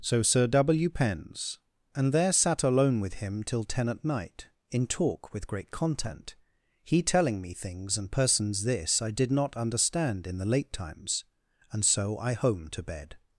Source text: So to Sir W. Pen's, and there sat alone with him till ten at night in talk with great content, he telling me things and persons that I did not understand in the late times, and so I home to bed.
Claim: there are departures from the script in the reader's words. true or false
true